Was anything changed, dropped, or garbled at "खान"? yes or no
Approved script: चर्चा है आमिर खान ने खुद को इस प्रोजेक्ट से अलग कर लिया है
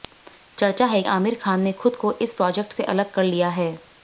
no